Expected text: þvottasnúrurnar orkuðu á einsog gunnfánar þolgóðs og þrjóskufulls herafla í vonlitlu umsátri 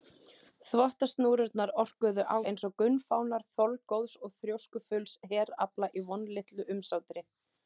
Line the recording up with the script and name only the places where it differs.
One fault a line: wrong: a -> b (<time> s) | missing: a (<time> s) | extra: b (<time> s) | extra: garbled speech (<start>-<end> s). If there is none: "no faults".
no faults